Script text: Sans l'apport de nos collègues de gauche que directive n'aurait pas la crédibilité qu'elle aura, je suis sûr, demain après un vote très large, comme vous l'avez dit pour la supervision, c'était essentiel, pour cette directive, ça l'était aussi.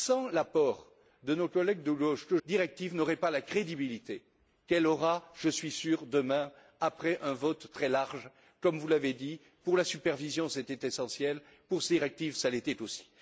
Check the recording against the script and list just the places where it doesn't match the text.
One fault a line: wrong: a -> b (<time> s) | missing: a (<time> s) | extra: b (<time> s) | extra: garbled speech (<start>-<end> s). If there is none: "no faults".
no faults